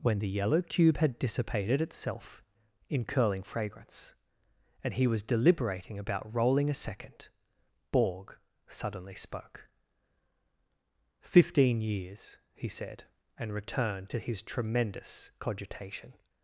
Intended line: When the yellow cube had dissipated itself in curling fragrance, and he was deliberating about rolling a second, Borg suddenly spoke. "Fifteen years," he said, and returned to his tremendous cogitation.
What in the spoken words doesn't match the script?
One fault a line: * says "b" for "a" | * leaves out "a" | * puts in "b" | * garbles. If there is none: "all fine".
all fine